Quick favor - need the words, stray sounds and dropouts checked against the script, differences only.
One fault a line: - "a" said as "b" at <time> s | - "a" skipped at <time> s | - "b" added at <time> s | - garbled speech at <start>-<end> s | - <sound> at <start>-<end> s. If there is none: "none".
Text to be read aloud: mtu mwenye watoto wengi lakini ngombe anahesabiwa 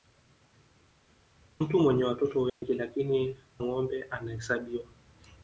- dropout at 2.5-2.6 s